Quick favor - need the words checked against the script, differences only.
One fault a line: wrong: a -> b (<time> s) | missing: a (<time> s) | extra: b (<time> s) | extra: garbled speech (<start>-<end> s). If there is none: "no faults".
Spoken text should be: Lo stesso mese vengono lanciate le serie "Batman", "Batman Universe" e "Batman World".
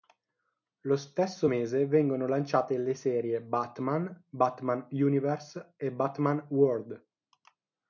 no faults